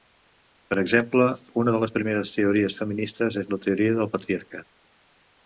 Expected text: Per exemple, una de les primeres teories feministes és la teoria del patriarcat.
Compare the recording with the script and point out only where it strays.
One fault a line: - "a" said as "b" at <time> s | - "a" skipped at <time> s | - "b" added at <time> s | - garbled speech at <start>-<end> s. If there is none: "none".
none